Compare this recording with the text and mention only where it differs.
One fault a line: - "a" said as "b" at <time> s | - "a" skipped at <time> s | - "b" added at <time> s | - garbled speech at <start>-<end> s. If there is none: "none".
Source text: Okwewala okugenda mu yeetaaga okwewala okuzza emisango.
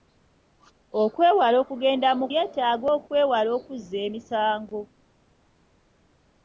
none